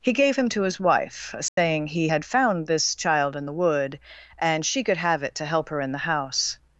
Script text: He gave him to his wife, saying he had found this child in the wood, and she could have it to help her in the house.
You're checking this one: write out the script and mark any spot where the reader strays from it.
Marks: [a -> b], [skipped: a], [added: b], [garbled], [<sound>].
He gave him to his wife, saying [dropout] he had found this child in the wood, and she could have it to help her in the house.